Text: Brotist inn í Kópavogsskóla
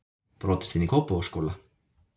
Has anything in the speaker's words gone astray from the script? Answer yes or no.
no